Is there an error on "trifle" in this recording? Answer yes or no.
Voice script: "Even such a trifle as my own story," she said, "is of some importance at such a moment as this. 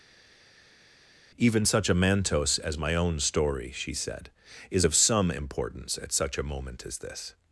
yes